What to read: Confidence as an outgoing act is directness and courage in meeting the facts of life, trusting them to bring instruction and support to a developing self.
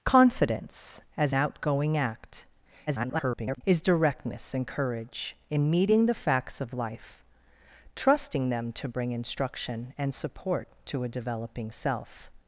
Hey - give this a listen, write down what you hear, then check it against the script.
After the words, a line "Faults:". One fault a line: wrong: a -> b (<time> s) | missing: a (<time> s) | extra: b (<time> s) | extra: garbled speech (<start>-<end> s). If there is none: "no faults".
Confidence as outgoing act [garbled] is directness and courage in meeting the facts of life, trusting them to bring instruction and support to a developing self.
Faults:
missing: an (1.4 s)
extra: garbled speech (2.9-3.6 s)